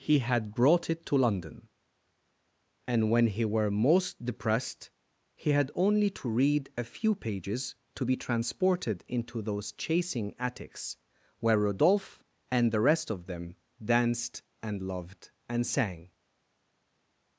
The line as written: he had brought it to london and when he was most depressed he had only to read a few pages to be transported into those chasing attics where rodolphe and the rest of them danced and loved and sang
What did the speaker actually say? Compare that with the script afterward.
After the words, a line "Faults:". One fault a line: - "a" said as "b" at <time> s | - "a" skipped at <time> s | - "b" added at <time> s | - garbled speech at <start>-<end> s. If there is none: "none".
he had brought it to london and when he were most depressed he had only to read a few pages to be transported into those chasing attics where rodolphe and the rest of them danced and loved and sang
Faults:
- "was" said as "were" at 3.5 s